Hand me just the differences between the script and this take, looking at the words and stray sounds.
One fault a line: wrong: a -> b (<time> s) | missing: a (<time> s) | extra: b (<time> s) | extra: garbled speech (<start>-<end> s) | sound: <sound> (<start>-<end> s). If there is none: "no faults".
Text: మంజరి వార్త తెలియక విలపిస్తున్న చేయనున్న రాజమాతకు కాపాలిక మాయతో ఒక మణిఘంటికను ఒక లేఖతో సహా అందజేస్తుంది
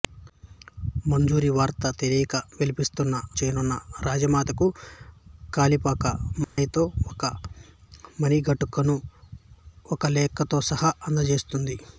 sound: dropout (6.4-6.6 s)